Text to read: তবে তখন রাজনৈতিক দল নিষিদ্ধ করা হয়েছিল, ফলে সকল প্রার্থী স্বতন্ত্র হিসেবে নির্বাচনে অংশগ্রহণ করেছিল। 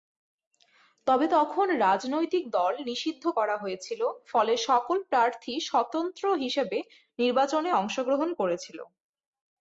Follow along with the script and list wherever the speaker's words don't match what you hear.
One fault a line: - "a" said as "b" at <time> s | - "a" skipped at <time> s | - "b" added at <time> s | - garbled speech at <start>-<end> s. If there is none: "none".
none